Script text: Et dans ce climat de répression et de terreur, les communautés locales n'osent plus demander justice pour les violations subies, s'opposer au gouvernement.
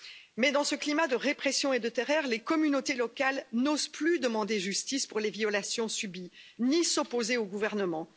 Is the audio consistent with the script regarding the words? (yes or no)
no